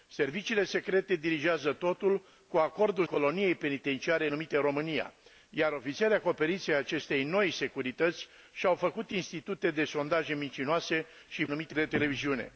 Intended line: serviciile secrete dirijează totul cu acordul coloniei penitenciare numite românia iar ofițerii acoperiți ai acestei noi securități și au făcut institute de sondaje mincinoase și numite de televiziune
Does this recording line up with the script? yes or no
yes